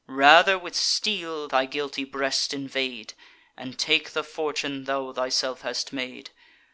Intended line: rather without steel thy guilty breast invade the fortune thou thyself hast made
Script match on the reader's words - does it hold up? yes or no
no